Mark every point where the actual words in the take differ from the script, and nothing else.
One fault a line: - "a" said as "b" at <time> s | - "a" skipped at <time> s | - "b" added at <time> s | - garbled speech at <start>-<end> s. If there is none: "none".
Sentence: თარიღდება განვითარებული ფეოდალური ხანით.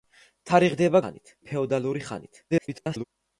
- "განვითარებული" said as "ხანით" at 1.0 s
- garbled speech at 2.5-3.0 s